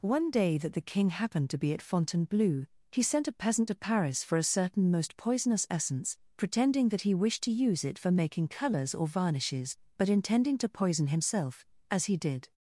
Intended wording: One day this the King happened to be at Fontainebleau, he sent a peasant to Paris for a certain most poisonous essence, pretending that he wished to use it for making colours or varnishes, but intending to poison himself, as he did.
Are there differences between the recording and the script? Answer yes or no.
yes